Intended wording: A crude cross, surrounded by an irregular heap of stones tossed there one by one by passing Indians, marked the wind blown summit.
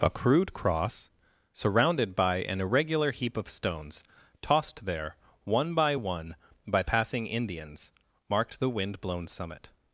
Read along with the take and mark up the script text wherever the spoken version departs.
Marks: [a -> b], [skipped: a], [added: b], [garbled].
A crude cross, surrounded by an irregular heap of stones tossed there one by one by passing Indians, marked the wind blown summit.